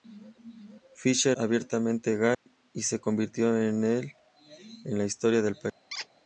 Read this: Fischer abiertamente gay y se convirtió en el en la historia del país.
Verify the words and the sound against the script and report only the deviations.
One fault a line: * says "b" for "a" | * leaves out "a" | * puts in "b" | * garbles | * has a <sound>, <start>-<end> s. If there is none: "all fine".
* has a dropout, 2.3-2.5 s
* has a squeak, 5.9-6.1 s